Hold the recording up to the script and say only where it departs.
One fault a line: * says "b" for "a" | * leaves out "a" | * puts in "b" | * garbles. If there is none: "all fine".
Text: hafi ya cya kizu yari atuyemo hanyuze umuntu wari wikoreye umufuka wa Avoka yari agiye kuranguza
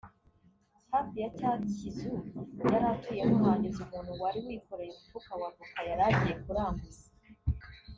all fine